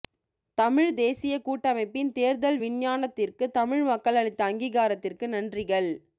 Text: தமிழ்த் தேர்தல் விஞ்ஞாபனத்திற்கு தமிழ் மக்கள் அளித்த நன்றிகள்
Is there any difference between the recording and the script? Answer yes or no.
yes